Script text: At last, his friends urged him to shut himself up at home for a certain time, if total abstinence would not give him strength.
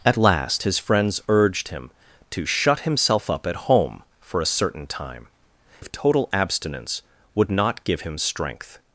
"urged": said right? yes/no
yes